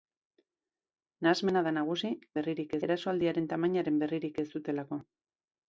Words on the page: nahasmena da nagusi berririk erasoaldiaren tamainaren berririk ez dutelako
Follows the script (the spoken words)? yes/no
yes